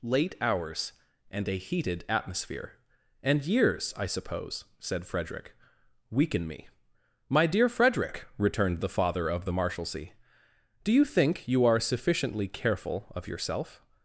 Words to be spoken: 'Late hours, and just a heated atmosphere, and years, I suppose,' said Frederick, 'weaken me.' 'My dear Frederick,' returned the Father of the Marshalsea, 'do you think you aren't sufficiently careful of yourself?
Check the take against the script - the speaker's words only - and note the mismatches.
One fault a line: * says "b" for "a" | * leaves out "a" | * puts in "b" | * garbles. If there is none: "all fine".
* leaves out "just"
* says "are" for "aren't"